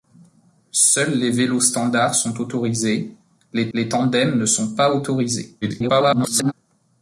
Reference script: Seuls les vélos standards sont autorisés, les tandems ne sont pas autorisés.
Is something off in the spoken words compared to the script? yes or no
yes